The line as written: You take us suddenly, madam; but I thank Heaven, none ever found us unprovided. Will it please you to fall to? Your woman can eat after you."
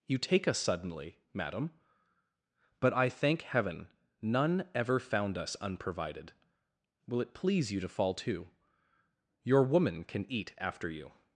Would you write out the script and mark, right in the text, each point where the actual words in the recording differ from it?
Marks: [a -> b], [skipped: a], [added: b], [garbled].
You take us suddenly, madam; but I thank Heaven, none ever found us unprovided. Will it please you to fall to? Your woman can eat after you."